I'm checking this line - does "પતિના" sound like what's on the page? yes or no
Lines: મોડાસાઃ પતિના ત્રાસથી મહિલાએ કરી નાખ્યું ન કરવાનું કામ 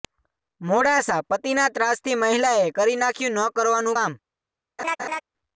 yes